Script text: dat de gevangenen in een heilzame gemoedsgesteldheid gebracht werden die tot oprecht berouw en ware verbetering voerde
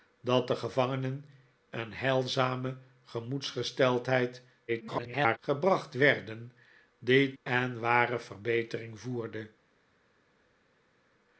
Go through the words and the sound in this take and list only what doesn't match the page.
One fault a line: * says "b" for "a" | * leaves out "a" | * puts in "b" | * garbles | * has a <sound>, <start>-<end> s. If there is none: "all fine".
* leaves out "in"
* garbles
* leaves out "tot oprecht berouw"